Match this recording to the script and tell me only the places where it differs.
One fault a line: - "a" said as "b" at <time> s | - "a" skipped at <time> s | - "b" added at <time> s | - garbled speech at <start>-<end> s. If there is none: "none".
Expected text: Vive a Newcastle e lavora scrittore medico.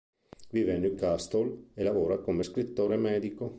- "come" added at 2.2 s